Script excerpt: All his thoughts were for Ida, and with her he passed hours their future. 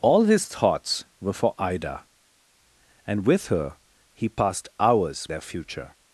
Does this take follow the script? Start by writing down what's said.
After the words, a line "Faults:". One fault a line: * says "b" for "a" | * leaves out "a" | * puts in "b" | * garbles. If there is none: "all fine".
All his thoughts were for Ida, and with her he passed hours their future.
Faults:
all fine